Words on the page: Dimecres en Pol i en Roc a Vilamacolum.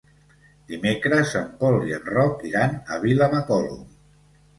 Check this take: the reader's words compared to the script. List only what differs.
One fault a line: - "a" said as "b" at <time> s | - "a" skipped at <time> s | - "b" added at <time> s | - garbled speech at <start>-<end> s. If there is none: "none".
- "iran" added at 2.5 s